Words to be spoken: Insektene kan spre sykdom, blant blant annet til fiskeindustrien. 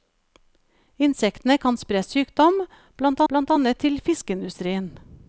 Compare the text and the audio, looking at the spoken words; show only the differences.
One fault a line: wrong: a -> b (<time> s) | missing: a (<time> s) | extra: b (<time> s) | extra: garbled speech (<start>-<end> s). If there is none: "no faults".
no faults